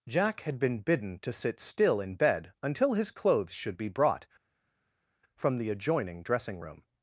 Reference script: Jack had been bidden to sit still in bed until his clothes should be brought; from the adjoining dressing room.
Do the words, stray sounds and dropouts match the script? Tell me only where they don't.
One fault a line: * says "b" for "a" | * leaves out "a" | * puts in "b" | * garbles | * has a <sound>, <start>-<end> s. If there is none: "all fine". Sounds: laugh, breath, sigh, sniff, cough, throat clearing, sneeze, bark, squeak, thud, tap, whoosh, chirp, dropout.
all fine